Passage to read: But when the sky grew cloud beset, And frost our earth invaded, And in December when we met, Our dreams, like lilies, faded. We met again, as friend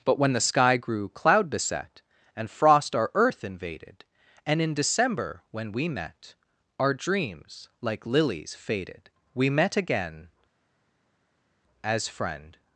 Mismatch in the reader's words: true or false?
false